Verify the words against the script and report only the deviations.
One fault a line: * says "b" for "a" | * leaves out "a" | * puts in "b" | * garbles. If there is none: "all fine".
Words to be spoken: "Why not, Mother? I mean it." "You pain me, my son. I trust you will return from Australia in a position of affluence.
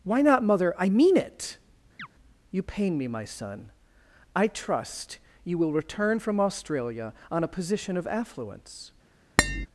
* says "on" for "in"